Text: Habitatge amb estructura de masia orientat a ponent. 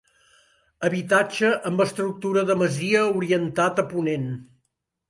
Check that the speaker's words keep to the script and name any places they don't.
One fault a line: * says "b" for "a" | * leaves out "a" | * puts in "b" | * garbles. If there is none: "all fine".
all fine